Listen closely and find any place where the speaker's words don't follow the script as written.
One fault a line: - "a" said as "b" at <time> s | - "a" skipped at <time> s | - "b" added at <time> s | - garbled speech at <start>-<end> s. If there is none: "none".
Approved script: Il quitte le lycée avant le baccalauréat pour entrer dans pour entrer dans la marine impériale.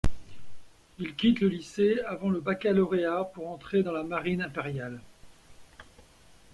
- "pour entrer dans" skipped at 3.9 s